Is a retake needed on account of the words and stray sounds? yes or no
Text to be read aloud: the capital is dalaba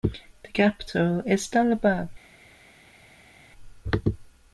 no